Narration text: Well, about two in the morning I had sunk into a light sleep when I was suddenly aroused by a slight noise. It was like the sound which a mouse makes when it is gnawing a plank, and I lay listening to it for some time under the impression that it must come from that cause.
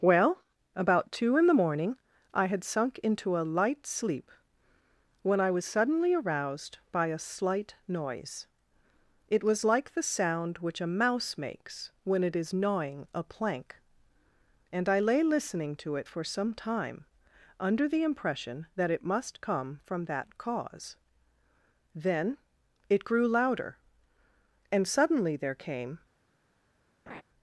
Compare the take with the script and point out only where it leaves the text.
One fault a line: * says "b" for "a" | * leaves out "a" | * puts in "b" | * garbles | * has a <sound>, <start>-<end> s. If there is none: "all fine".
* puts in "Then it grew louder and suddenly there came"
* has a laugh, 27.1-27.2 s